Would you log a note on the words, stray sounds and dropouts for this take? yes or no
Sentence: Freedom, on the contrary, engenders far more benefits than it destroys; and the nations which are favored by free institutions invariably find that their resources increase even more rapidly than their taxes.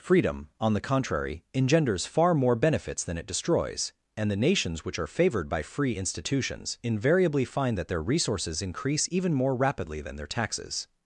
no